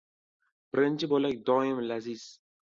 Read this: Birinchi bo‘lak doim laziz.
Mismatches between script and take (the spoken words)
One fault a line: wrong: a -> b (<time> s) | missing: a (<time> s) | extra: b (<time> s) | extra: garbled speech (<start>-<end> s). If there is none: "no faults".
no faults